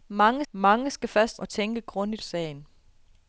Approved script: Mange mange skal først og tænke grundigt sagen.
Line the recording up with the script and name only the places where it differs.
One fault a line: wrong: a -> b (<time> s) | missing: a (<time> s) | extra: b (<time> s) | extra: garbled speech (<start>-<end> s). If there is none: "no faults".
no faults